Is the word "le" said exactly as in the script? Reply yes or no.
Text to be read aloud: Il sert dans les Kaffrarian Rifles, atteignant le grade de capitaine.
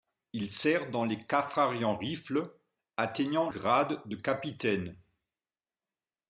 no